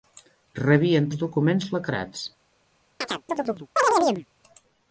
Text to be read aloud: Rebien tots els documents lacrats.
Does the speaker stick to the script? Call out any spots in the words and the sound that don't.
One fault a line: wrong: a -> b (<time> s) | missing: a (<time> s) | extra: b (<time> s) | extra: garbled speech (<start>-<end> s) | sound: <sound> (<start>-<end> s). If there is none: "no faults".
missing: tots (1.1 s)
sound: chirp (3.0-4.3 s)